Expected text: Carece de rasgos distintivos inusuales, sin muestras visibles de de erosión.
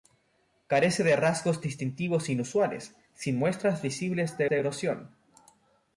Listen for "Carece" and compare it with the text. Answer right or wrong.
right